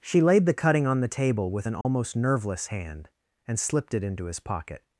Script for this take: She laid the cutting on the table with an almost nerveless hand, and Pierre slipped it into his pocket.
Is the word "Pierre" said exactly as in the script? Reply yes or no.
no